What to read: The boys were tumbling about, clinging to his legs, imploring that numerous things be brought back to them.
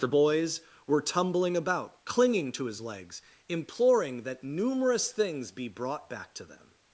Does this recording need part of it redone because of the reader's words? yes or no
no